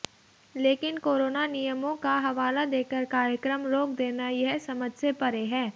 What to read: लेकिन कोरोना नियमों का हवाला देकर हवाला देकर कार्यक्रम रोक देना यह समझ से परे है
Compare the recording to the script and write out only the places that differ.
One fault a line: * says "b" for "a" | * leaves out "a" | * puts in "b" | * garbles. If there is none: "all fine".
* leaves out "हवाला देकर"